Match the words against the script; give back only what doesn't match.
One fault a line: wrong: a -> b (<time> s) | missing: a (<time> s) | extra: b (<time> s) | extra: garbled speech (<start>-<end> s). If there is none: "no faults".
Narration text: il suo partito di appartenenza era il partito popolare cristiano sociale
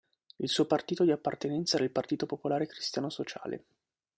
no faults